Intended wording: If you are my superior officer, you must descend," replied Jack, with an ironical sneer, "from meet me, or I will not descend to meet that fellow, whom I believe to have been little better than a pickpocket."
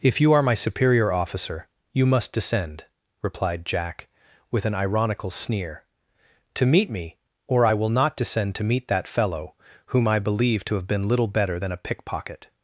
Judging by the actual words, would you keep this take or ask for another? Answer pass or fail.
fail